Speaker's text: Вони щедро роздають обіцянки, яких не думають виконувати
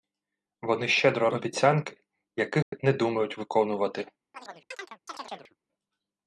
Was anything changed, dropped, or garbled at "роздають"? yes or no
yes